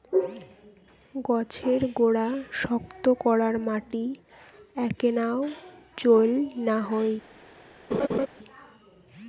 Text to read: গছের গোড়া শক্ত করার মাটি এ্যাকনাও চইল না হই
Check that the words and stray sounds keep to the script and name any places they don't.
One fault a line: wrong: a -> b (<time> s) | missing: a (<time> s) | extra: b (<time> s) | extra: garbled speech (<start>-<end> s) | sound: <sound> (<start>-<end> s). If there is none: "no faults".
sound: laugh (7.9-8.3 s)